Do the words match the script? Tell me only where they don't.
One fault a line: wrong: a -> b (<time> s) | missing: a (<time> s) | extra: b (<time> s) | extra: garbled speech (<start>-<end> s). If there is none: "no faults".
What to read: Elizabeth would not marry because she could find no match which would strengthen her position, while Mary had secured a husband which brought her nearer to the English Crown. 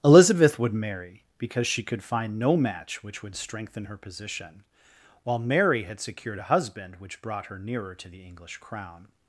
missing: not (0.7 s)